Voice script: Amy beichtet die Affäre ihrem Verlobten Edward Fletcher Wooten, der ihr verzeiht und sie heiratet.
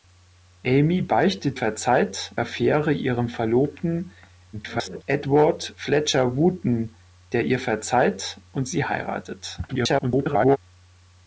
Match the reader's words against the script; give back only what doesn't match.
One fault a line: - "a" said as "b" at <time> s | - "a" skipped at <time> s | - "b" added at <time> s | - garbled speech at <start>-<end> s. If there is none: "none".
- "die" said as "verzeiht" at 1.5 s
- garbled speech at 4.5-5.0 s
- garbled speech at 9.7-10.6 s